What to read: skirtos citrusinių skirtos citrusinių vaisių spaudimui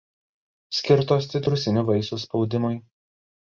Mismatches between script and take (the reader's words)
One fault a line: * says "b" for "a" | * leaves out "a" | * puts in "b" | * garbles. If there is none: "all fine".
* leaves out "skirtos citrusinių"